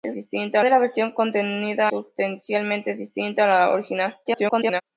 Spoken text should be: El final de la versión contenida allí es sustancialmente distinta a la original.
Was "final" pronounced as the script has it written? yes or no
no